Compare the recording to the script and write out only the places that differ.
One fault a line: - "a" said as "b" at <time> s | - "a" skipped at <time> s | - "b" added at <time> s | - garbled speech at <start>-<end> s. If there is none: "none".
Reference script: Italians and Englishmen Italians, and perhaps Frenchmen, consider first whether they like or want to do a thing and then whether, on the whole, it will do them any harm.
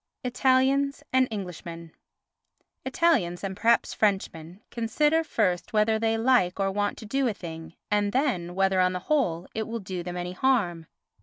none